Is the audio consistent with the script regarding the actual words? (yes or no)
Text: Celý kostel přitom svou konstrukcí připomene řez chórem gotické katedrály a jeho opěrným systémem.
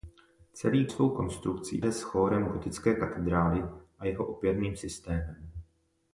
no